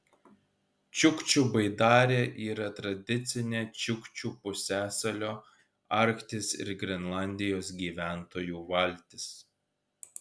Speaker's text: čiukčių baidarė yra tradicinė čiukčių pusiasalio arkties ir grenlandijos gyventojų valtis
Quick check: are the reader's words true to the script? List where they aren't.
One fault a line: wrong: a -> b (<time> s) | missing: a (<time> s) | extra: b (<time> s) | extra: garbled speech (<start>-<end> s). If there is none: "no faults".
no faults